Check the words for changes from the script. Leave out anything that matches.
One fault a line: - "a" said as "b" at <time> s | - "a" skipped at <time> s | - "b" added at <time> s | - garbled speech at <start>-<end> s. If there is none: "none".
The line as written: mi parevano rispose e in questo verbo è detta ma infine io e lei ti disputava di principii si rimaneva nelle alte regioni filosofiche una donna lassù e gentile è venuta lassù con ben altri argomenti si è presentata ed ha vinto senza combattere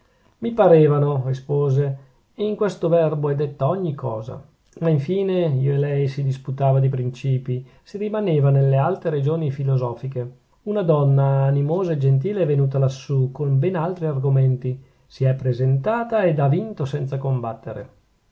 - "ogni cosa" added at 3.7 s
- "ti" said as "si" at 6.1 s
- "lassù" said as "animosa" at 11.4 s